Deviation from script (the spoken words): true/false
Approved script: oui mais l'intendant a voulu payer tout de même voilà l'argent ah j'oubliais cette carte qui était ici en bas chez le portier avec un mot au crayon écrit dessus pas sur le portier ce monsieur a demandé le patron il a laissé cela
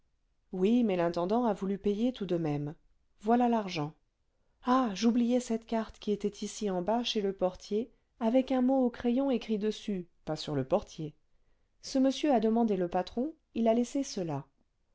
false